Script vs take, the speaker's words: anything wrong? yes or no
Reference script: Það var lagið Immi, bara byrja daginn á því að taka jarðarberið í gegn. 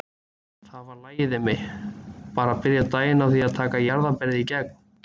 no